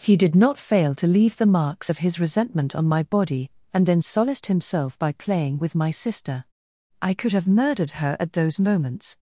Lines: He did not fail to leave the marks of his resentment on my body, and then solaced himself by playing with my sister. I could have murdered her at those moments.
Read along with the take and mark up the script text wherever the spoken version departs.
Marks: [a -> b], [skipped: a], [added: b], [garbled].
He did not fail to leave the marks of his resentment on my body, and then solaced himself by playing with my sister. I could have murdered her at those moments.